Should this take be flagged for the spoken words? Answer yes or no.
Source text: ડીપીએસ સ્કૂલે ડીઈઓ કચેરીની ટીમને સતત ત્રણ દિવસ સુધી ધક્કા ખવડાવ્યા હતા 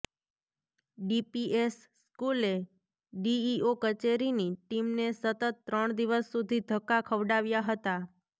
no